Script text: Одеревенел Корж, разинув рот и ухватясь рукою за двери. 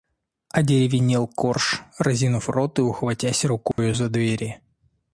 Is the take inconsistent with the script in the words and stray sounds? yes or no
yes